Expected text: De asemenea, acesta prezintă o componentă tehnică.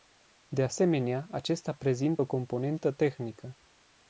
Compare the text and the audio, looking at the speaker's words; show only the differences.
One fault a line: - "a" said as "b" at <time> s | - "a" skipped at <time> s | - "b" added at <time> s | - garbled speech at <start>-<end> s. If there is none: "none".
none